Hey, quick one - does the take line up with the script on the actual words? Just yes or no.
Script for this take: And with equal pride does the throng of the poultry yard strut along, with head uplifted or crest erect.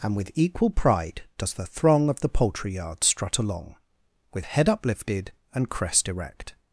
no